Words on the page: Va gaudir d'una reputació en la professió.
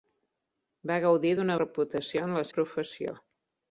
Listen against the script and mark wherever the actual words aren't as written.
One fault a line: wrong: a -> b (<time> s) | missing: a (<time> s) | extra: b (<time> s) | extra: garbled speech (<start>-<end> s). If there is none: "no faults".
no faults